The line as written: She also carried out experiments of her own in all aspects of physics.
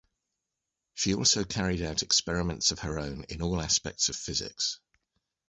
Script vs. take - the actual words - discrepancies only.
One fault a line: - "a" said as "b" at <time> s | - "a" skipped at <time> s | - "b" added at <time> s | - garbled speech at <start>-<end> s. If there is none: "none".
none